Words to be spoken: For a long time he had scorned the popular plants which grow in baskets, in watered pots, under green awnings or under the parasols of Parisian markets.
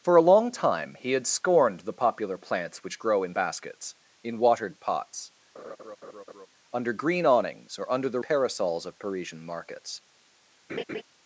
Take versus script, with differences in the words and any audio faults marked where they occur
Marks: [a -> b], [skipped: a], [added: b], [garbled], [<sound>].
For a long time he had scorned the popular plants which grow in baskets, in watered pots, [laugh] under green awnings or under the parasols of Parisian markets. [laugh]